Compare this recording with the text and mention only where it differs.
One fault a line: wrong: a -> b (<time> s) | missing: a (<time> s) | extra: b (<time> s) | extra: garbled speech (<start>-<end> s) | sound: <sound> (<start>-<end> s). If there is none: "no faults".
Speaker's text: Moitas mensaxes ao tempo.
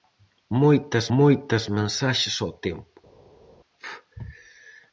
extra: moitas (1.2 s)